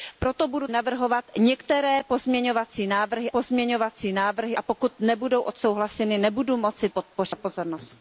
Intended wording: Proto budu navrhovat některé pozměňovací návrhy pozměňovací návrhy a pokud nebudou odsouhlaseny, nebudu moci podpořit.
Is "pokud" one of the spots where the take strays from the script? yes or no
no